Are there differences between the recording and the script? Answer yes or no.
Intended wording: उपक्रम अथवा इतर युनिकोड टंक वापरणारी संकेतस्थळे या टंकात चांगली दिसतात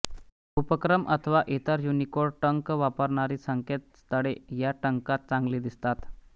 no